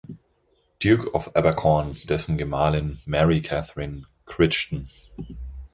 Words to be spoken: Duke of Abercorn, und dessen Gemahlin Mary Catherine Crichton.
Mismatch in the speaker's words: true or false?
true